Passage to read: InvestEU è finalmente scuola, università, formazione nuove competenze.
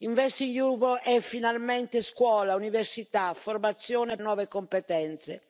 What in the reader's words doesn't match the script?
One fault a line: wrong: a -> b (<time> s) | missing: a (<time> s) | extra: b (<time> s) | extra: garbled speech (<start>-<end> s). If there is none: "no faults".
no faults